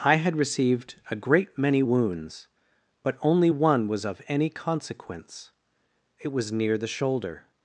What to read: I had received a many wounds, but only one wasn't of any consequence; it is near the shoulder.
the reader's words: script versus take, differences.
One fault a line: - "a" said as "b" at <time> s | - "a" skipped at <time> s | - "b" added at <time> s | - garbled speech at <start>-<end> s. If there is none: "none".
- "great" added at 1.1 s
- "wasn't" said as "was" at 3.9 s
- "is" said as "was" at 6.3 s